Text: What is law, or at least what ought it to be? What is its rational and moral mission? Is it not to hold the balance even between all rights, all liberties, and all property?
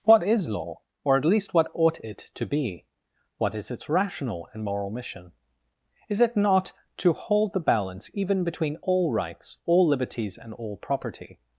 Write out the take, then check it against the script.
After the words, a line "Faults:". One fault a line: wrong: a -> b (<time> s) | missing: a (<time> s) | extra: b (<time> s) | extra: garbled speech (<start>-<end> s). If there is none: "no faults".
What is law, or at least what ought it to be? What is its rational and moral mission? Is it not to hold the balance even between all rights, all liberties, and all property?
Faults:
no faults